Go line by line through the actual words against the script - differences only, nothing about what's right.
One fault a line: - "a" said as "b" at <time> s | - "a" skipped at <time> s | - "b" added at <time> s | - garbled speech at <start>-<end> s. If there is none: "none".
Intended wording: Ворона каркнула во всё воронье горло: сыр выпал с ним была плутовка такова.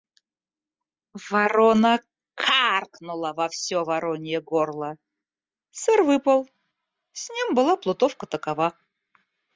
none